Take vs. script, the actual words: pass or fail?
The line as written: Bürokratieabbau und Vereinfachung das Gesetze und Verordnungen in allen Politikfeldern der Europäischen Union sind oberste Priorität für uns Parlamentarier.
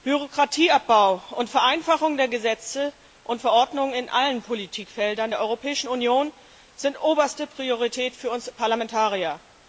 fail